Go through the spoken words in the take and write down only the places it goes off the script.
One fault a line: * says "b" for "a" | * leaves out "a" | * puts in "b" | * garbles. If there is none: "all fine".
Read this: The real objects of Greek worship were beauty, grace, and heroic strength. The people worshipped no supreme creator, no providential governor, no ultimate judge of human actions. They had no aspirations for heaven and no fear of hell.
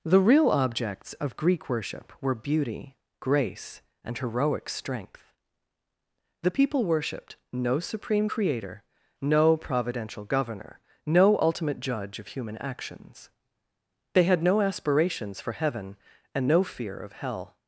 all fine